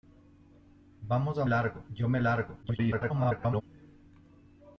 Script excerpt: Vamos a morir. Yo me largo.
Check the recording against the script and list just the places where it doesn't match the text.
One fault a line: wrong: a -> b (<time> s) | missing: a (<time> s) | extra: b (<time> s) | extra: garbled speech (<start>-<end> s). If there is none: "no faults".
wrong: morir -> largo (1.5 s)
extra: garbled speech (2.6-3.6 s)